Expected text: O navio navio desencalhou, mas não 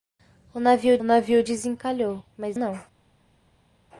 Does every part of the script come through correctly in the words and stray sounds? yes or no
yes